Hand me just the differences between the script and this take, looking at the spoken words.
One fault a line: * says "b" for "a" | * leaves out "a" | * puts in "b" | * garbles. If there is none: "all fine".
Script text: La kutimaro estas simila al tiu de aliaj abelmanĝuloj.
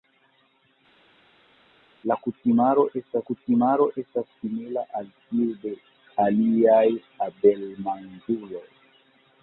* puts in "kutimaro estas"